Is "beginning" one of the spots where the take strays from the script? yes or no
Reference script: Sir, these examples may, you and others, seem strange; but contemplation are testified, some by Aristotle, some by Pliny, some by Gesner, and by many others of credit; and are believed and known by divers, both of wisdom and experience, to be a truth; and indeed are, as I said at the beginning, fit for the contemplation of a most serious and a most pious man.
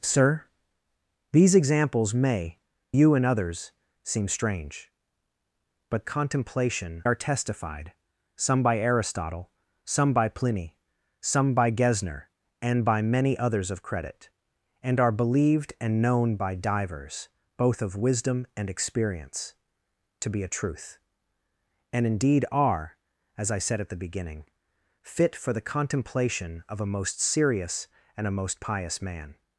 no